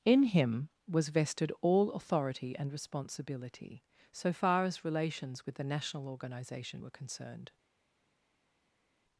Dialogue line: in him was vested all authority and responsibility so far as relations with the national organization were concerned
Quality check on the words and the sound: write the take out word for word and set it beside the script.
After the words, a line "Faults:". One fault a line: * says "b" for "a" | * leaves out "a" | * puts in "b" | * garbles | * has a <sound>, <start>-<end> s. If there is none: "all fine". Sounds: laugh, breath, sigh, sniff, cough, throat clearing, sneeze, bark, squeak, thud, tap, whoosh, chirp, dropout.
in him was vested all authority and responsibility so far as relations with the national organization were concerned
Faults:
all fine